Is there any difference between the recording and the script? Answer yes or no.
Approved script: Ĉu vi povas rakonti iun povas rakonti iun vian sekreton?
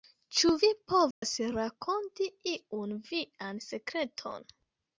yes